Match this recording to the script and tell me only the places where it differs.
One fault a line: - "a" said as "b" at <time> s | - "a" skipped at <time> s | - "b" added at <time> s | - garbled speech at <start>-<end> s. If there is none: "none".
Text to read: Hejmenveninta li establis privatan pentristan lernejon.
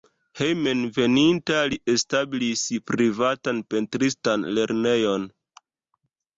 none